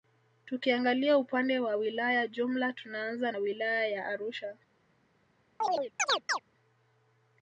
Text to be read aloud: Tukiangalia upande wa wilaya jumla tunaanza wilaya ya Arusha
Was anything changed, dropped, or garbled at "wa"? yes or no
no